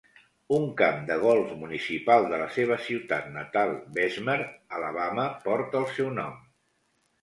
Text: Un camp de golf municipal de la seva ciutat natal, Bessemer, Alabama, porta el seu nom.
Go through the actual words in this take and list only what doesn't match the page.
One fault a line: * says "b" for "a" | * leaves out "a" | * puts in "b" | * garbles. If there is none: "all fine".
all fine